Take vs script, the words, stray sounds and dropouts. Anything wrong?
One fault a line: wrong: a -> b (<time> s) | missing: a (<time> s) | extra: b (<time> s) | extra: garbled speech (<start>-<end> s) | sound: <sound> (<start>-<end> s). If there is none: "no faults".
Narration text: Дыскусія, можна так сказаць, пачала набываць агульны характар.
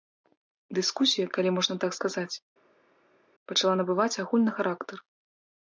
extra: калі (1.4 s)